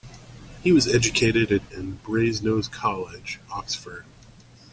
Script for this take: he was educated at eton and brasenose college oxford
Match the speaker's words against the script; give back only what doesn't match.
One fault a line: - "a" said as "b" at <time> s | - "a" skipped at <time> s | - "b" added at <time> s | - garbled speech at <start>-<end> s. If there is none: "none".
- "eton" skipped at 1.6 s